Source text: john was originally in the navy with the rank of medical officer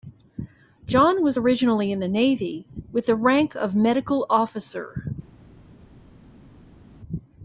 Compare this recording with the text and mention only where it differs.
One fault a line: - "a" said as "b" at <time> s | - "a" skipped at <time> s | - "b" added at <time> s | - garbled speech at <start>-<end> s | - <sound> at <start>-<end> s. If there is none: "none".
none